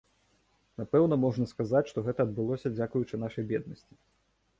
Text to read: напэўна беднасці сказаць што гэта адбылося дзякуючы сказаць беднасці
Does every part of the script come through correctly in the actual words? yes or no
no